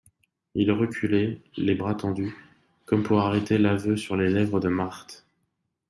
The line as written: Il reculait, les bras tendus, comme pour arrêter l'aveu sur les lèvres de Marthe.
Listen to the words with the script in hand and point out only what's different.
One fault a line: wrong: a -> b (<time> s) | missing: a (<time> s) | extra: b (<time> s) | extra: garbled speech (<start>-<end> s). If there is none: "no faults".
no faults